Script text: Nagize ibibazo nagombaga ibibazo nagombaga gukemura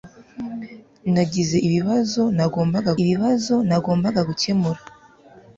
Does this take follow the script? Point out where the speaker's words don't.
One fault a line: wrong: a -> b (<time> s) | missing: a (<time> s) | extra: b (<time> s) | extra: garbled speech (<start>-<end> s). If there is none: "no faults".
no faults